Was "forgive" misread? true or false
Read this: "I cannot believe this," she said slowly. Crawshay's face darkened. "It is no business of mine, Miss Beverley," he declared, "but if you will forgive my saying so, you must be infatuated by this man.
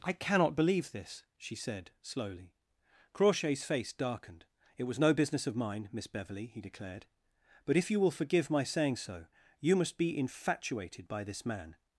false